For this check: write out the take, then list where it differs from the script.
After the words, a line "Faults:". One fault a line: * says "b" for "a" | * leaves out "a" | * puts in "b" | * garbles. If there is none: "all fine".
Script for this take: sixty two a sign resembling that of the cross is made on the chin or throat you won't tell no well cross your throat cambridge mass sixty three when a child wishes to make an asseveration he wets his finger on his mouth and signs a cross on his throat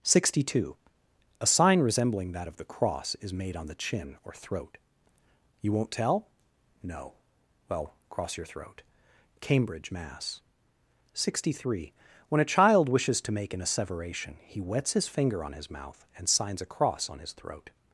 sixty two a sign resembling that of the cross is made on the chin or throat you won't tell no well cross your throat cambridge mass sixty three when a child wishes to make an asseveration he wets his finger on his mouth and signs a cross on his throat
Faults:
all fine